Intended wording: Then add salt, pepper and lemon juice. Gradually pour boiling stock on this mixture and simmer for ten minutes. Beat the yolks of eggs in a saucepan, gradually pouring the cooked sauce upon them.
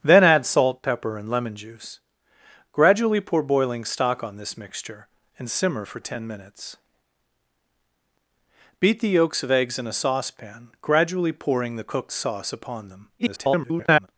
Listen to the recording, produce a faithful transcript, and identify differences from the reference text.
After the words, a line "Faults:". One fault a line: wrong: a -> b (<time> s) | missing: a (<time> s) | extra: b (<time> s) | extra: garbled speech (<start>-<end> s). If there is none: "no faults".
Then add salt, pepper and lemon juice. Gradually pour boiling stock on this mixture and simmer for ten minutes. Beat the yolks of eggs in a saucepan, gradually pouring the cooked sauce upon them. [garbled]
Faults:
extra: garbled speech (13.2-14.1 s)